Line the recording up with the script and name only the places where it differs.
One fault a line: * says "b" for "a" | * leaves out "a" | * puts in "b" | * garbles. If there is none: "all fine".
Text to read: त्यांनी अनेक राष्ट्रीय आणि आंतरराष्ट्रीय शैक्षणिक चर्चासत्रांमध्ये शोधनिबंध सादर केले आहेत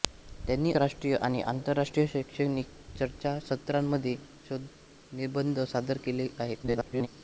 * leaves out "अनेक"
* garbles